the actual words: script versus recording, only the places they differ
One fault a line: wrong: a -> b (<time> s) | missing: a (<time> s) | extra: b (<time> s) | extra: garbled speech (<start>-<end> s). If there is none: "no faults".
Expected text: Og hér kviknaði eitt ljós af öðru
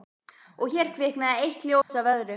no faults